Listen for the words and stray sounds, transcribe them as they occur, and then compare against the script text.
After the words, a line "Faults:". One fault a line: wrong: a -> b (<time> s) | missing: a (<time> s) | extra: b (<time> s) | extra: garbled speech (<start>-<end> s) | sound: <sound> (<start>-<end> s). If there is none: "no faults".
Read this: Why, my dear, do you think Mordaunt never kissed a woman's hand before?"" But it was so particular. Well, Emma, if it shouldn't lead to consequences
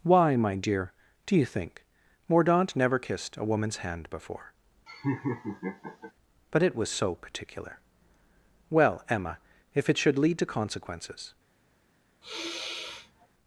Why, my dear, do you think Mordaunt never kissed a woman's hand before?"" But it was so particular. Well, Emma, if it should lead to consequences
Faults:
sound: laugh (4.9-6.1 s)
wrong: shouldn't -> should (10.0 s)
sound: sigh (12.2-13.3 s)